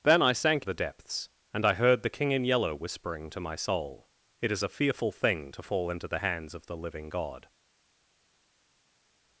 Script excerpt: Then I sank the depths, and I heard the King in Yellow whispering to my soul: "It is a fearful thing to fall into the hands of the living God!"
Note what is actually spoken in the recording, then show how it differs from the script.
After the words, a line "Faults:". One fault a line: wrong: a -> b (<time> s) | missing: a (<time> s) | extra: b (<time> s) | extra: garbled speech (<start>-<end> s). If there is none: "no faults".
Then I sank the depths, and I heard the King in Yellow whispering to my soul: "It is a fearful thing to fall into the hands of the living God!"
Faults:
no faults